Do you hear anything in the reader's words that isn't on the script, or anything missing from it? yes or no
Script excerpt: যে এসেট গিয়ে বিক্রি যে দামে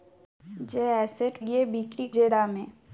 no